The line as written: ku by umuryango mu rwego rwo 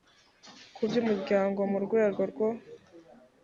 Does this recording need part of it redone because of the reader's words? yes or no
no